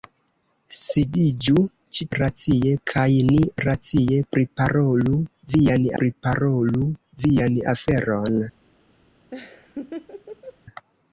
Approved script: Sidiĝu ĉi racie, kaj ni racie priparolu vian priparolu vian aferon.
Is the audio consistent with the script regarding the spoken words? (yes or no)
yes